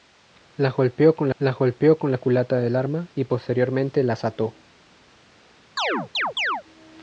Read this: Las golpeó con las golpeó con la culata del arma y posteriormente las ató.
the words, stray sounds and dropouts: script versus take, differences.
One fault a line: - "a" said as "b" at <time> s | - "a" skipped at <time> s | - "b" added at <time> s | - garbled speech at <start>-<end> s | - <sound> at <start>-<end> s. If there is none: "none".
- chirp at 5.8-6.6 s